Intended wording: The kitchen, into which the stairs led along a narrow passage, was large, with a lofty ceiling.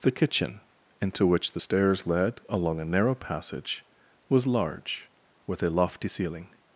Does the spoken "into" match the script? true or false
true